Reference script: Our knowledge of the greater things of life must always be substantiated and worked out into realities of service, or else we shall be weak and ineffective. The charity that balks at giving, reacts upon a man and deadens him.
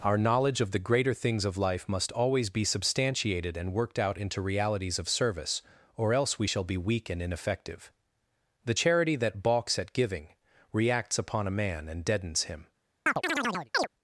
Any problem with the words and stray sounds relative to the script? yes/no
yes